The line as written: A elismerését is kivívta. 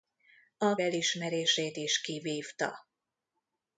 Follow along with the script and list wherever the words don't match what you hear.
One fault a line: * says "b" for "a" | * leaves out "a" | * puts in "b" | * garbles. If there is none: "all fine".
all fine